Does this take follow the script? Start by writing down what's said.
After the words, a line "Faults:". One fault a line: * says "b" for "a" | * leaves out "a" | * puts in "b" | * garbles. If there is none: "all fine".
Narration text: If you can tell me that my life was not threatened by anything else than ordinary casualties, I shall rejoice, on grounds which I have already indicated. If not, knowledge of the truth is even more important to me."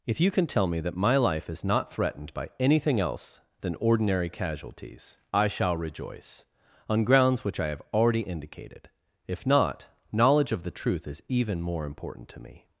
If you can tell me that my life is not threatened by anything else than ordinary casualties, I shall rejoice, on grounds which I have already indicated. If not, knowledge of the truth is even more important to me."
Faults:
* says "is" for "was"